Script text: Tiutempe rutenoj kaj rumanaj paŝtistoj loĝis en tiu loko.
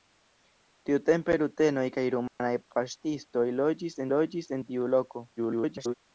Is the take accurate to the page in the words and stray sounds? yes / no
no